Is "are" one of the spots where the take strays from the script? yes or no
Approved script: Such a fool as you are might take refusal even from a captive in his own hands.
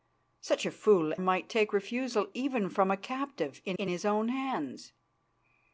yes